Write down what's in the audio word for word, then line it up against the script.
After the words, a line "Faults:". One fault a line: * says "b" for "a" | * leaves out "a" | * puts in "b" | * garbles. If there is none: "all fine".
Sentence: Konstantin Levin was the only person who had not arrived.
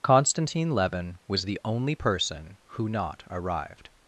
Konstantin Levin was the only person who not arrived.
Faults:
* leaves out "had"